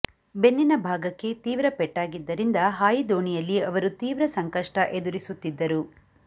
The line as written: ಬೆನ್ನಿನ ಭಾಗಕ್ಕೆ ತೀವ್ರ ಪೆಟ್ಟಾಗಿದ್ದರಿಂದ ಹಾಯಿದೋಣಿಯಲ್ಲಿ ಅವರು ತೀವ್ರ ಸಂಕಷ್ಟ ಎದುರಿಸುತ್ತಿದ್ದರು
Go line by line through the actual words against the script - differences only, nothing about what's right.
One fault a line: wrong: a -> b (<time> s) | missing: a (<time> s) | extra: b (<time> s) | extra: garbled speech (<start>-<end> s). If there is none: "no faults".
no faults